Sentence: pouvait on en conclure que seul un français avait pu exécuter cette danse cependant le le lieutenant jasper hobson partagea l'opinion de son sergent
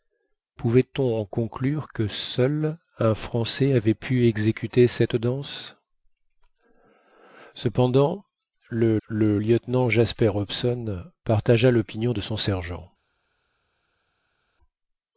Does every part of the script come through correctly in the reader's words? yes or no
yes